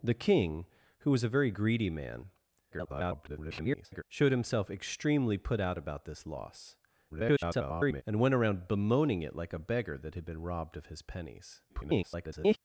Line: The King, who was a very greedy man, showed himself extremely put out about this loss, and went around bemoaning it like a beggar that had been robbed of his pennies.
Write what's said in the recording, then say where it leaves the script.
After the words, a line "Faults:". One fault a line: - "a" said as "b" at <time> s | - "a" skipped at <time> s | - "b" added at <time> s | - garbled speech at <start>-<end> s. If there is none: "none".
The King, who was a very greedy man, [garbled] showed himself extremely put out about this loss, [garbled] and went around bemoaning it like a beggar that had been robbed of his pennies. [garbled]
Faults:
- garbled speech at 2.7-4.0 s
- garbled speech at 7.1-8.0 s
- garbled speech at 11.7-12.6 s